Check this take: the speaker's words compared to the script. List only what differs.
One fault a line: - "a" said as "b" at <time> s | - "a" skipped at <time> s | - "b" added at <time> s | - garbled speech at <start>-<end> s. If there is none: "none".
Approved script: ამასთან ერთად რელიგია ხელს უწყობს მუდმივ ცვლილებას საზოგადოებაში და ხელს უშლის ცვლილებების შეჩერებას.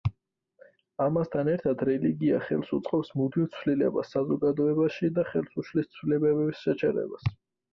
none